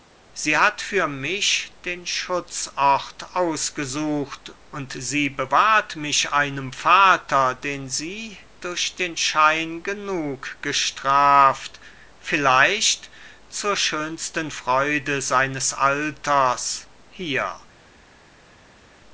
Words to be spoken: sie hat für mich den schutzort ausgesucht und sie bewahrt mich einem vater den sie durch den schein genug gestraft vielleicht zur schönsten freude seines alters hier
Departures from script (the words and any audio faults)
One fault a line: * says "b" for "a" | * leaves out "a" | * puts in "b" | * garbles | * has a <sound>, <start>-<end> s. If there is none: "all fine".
all fine